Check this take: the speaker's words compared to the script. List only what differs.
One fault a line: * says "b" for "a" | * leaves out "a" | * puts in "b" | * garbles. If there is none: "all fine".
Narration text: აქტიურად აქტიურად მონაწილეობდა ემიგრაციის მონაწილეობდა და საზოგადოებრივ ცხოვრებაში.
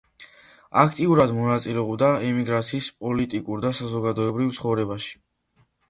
* leaves out "აქტიურად"
* says "პოლიტიკურ" for "მონაწილეობდა"